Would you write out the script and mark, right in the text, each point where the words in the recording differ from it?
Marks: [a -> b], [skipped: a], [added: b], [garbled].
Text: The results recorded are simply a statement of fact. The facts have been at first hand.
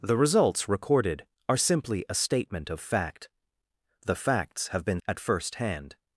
The results recorded are simply a statement of fact. The facts have been at first hand.